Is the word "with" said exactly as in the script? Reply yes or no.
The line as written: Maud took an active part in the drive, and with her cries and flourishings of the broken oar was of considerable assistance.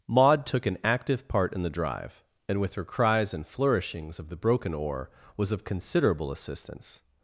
yes